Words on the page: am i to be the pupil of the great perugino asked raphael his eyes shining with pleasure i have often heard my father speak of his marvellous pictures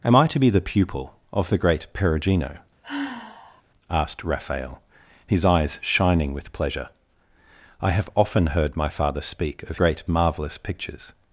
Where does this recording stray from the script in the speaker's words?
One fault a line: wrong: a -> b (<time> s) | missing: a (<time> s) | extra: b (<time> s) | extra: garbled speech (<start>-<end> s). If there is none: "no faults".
wrong: his -> great (9.8 s)